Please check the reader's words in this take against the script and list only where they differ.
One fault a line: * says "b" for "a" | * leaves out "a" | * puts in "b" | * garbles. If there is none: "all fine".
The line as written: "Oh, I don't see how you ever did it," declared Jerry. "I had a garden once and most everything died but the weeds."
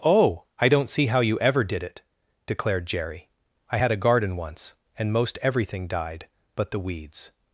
all fine